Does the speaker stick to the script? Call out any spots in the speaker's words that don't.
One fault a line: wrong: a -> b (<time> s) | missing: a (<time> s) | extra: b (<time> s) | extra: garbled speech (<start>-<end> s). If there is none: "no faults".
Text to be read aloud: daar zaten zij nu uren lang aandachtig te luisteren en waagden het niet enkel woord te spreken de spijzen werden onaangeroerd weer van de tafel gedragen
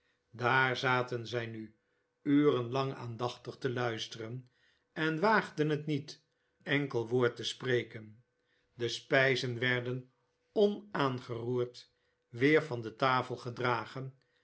no faults